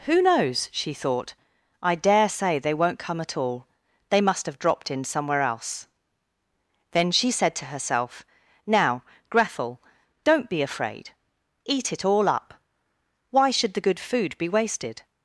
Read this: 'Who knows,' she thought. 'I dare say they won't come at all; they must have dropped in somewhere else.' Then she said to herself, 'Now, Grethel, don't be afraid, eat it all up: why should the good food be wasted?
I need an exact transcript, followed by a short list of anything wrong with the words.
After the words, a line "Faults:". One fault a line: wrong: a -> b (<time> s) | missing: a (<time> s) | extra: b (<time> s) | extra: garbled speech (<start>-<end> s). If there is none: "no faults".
'Who knows,' she thought. 'I dare say they won't come at all; they must have dropped in somewhere else.' Then she said to herself, 'Now, Grethel, don't be afraid, eat it all up: why should the good food be wasted?
Faults:
no faults